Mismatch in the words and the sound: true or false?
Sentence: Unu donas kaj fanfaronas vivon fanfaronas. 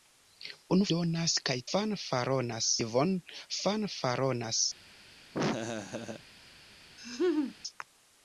true